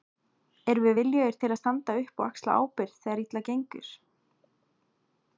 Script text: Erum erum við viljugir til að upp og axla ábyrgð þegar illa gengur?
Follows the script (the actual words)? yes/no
no